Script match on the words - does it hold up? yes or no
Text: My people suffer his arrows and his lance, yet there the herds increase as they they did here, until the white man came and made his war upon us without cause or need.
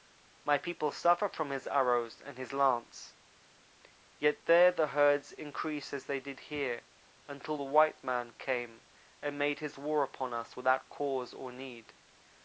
no